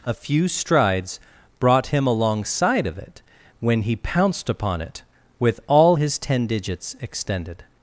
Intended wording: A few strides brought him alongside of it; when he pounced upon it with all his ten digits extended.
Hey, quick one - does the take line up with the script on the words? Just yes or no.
yes